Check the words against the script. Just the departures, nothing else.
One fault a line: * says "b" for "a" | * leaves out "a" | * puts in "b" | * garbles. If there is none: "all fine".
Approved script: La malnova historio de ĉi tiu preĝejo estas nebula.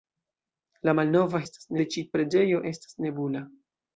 * says "estas" for "historio"
* leaves out "tiu"